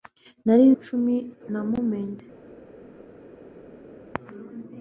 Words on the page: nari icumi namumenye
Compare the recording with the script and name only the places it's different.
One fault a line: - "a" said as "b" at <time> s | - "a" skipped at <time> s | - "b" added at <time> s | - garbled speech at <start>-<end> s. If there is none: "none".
none